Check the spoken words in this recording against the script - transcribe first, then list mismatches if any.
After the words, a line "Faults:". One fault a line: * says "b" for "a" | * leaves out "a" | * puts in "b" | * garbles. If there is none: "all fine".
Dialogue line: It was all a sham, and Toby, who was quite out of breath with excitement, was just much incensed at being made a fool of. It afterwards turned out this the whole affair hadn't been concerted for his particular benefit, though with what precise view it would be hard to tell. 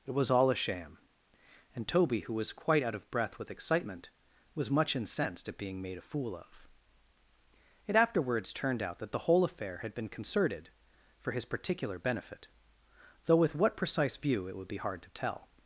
It was all a sham, and Toby, who was quite out of breath with excitement, was much incensed at being made a fool of. It afterwards turned out that the whole affair had been concerted for his particular benefit, though with what precise view it would be hard to tell.
Faults:
* leaves out "just"
* says "that" for "this"
* says "had" for "hadn't"